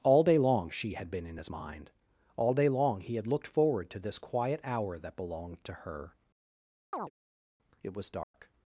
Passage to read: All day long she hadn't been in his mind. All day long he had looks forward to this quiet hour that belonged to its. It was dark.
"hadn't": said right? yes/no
no